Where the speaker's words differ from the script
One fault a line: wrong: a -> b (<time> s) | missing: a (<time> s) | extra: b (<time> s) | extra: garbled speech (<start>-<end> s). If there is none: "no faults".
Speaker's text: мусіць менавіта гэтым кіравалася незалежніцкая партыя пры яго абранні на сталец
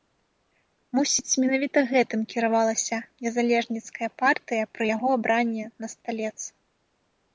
no faults